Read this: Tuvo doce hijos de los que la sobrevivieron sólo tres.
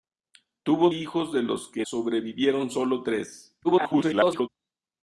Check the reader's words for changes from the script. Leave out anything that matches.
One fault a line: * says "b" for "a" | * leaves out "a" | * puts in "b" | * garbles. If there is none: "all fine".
* leaves out "doce"
* leaves out "la"
* garbles